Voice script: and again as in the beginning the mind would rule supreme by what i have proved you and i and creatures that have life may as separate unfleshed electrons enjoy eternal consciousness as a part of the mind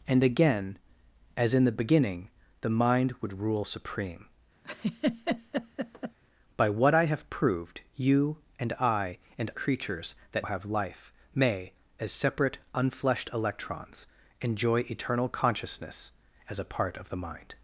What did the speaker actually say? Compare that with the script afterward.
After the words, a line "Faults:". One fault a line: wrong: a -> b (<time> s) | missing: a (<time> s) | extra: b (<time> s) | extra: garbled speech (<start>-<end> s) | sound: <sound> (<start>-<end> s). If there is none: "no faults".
and again as in the beginning the mind would rule supreme by what i have proved you and i and creatures that have life may as separate unfleshed electrons enjoy eternal consciousness as a part of the mind
Faults:
sound: laugh (4.6-6.2 s)